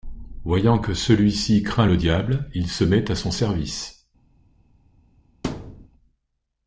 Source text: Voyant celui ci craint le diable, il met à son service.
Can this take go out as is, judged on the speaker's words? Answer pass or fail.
fail